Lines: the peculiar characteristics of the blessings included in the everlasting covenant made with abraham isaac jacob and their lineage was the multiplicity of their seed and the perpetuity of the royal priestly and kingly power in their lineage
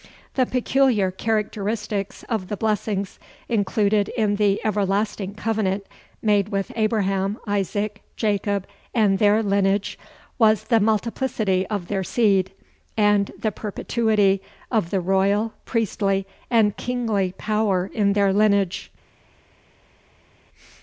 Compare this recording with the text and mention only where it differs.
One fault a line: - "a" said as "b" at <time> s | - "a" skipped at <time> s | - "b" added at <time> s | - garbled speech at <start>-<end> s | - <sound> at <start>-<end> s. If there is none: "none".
none